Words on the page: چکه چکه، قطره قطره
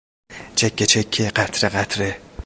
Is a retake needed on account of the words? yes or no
no